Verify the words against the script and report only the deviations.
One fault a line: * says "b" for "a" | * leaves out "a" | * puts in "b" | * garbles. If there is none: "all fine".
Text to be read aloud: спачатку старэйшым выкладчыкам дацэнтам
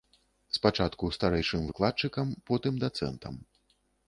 * puts in "потым"